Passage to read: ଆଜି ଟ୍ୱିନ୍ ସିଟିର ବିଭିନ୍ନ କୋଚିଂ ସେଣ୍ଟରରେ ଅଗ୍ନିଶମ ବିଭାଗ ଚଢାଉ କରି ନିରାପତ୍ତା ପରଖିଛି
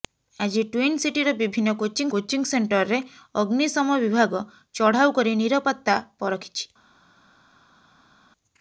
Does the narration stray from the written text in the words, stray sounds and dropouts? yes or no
yes